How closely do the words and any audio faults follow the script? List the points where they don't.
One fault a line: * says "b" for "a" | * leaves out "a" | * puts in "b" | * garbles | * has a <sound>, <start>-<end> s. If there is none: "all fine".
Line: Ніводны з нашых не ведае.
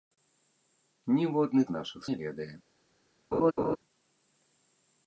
* has a laugh, 3.3-3.8 s